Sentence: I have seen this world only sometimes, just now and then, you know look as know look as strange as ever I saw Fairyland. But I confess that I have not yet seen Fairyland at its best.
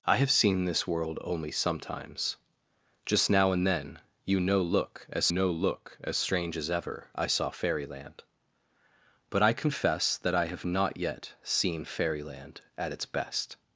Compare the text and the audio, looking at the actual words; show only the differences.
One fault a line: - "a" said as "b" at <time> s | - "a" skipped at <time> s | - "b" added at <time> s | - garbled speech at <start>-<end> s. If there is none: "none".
none